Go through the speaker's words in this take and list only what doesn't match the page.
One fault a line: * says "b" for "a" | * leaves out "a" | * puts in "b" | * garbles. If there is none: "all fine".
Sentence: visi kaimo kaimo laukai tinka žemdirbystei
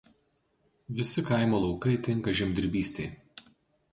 * leaves out "kaimo"